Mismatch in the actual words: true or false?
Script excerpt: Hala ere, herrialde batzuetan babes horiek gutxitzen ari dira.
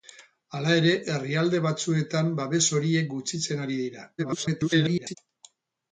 true